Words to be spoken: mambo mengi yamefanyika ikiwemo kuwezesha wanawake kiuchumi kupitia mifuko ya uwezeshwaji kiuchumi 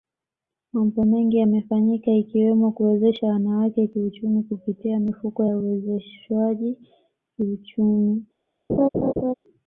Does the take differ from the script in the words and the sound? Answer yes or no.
yes